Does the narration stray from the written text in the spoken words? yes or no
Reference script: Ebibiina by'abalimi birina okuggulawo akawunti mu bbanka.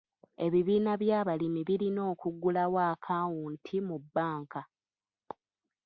no